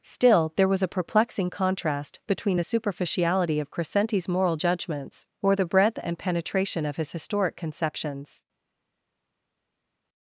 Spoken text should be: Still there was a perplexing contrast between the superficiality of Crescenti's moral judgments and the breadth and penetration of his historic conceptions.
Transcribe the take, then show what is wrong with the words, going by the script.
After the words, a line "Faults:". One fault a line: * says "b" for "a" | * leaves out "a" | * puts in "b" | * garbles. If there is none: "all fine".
Still there was a perplexing contrast between the superficiality of Crescenti's moral judgments or the breadth and penetration of his historic conceptions.
Faults:
* says "or" for "and"